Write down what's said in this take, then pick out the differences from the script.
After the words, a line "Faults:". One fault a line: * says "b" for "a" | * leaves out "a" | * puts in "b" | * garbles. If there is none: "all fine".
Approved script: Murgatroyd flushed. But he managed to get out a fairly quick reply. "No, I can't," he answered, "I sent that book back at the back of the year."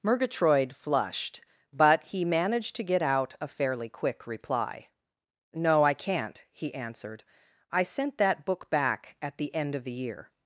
Murgatroyd flushed. But he managed to get out a fairly quick reply. "No, I can't," he answered, "I sent that book back at the end of the year."
Faults:
* says "end" for "back"